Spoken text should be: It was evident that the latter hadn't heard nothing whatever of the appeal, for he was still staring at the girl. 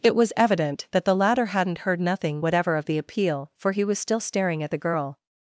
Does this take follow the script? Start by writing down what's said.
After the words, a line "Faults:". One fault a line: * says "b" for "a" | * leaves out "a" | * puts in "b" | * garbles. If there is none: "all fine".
It was evident that the latter hadn't heard nothing whatever of the appeal, for he was still staring at the girl.
Faults:
all fine